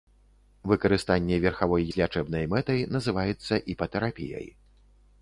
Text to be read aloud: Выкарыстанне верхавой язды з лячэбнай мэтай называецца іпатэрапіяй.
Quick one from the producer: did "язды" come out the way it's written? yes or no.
no